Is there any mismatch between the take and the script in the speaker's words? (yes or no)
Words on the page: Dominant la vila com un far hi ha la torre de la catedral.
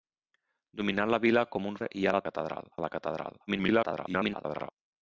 yes